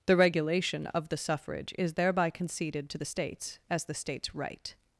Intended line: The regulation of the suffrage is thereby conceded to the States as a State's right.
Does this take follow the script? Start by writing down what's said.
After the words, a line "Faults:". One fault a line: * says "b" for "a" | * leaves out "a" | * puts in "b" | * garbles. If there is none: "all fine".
The regulation of the suffrage is thereby conceded to the States as the State's right.
Faults:
* says "the" for "a"